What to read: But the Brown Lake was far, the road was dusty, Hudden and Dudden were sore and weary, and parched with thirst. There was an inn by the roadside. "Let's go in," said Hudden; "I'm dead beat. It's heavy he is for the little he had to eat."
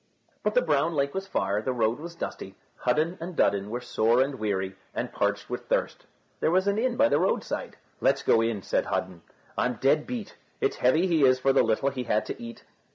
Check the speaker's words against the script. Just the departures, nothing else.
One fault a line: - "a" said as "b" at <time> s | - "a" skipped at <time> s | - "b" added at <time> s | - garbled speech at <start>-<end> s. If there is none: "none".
none